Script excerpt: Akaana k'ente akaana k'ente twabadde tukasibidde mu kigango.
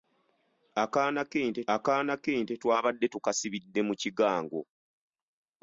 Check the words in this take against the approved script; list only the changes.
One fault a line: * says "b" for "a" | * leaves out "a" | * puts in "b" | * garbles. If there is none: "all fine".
all fine